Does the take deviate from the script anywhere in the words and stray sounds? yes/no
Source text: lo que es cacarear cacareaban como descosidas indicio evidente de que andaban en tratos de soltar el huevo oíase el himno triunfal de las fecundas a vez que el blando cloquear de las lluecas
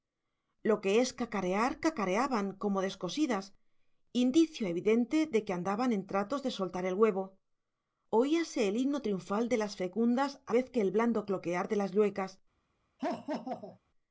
yes